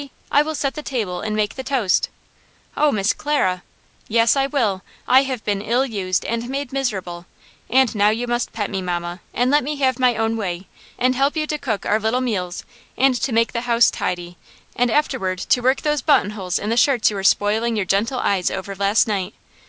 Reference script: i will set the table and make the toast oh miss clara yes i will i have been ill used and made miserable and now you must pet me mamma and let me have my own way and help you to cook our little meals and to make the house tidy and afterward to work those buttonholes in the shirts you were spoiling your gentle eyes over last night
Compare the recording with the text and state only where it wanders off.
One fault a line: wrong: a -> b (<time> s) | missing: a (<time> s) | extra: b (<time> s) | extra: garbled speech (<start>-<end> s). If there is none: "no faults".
no faults